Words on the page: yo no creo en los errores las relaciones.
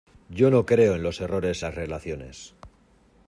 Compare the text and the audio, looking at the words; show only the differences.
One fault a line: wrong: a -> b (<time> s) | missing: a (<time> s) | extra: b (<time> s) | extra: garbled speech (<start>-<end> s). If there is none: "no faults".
no faults